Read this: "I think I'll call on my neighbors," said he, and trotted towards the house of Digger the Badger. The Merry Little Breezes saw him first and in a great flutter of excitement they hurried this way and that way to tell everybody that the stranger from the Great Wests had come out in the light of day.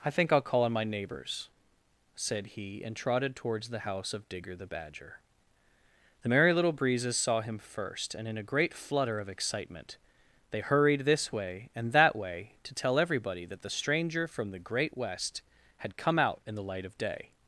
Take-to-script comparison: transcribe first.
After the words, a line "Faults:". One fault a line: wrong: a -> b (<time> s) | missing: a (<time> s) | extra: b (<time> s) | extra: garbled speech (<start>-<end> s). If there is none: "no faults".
"I think I'll call on my neighbors," said he, and trotted towards the house of Digger the Badger. The Merry Little Breezes saw him first and in a great flutter of excitement they hurried this way and that way to tell everybody that the stranger from the Great West had come out in the light of day.
Faults:
wrong: Wests -> West (15.0 s)